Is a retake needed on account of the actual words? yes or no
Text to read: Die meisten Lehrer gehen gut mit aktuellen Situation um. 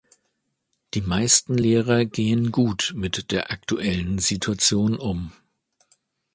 yes